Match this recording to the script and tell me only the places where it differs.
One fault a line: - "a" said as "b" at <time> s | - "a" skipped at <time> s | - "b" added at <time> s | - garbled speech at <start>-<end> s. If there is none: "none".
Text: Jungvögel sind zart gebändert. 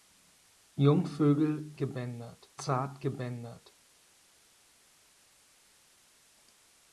- "sind" said as "gebändert" at 1.7 s